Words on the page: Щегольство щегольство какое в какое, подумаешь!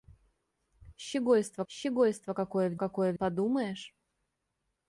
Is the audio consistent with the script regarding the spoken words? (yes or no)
yes